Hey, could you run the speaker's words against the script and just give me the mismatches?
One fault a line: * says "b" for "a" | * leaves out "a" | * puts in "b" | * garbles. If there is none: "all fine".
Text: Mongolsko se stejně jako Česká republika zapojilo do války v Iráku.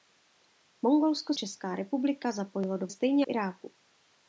* leaves out "se stejně jako"
* says "stejně" for "války"